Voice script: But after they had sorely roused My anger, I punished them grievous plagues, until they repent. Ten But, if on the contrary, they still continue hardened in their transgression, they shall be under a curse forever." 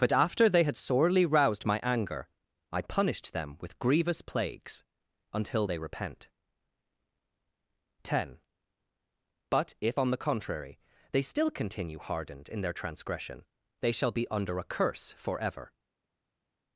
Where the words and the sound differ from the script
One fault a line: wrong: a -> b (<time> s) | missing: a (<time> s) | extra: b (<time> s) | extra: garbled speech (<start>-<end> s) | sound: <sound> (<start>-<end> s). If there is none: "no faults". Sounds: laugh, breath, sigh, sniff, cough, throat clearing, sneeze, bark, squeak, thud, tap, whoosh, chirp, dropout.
extra: with (3.6 s)